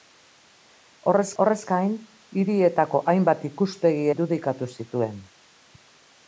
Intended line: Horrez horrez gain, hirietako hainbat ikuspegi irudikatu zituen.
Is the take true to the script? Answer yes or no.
yes